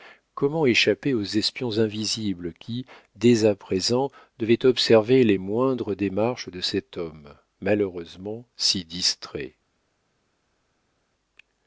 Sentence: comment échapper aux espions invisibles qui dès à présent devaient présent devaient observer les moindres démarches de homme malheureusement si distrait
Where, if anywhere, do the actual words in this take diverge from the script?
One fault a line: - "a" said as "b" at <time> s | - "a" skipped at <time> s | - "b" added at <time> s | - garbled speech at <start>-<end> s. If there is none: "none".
- "présent devaient" skipped at 4.6 s
- "cet" added at 6.6 s